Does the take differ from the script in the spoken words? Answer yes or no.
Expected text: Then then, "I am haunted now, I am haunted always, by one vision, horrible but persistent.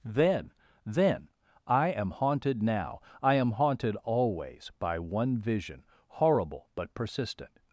no